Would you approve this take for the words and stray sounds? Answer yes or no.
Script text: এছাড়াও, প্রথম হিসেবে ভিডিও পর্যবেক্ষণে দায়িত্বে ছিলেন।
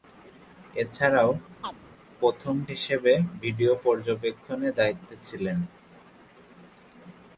no